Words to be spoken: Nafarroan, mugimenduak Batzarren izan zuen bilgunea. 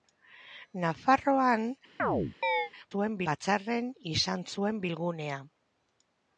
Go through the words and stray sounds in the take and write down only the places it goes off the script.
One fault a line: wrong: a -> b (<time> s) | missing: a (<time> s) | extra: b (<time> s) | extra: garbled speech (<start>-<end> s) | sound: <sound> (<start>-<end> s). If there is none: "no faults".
sound: chirp (2.0-2.7 s)
wrong: mugimenduak -> zuen (2.9 s)